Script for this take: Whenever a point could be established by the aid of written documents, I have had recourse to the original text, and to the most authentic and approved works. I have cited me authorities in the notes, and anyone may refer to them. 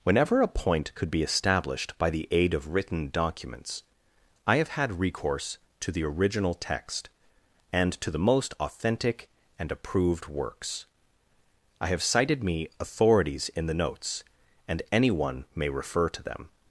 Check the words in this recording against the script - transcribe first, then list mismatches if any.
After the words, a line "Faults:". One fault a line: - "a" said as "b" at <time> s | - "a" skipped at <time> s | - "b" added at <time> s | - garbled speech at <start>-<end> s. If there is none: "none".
Whenever a point could be established by the aid of written documents, I have had recourse to the original text, and to the most authentic and approved works. I have cited me authorities in the notes, and anyone may refer to them.
Faults:
none